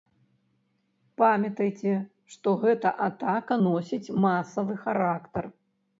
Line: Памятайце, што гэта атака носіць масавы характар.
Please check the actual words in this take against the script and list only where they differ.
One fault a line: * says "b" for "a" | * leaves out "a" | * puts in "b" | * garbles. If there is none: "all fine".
all fine